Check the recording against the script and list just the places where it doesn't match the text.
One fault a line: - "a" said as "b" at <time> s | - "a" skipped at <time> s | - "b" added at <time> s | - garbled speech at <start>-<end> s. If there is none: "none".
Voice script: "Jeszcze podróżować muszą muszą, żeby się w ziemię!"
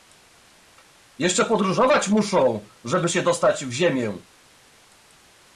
- "muszą" skipped at 2.7 s
- "dostać" added at 3.2 s